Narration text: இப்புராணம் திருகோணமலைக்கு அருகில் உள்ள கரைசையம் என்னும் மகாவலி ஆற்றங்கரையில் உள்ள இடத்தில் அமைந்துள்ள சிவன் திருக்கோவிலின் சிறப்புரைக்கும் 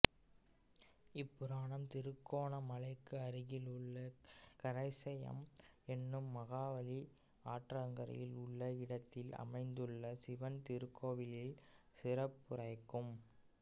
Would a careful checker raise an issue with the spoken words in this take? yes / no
no